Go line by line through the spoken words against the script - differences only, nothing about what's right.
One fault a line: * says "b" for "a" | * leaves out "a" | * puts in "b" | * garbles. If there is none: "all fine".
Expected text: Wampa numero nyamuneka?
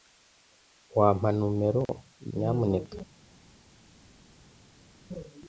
all fine